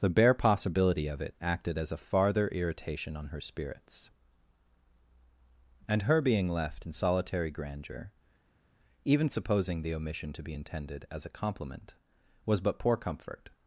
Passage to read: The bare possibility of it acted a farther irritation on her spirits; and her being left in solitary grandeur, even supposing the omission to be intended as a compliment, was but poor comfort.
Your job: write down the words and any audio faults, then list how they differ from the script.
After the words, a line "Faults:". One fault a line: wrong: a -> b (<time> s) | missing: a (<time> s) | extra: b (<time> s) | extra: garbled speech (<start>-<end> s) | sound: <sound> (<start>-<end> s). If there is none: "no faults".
The bare possibility of it acted as a farther irritation on her spirits; and her being left in solitary grandeur, even supposing the omission to be intended as a compliment, was but poor comfort.
Faults:
extra: as (1.8 s)